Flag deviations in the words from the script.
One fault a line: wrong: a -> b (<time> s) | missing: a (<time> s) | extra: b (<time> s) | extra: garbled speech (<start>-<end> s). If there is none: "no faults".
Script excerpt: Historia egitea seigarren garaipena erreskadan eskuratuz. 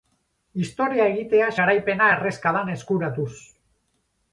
missing: seigarren (1.5 s)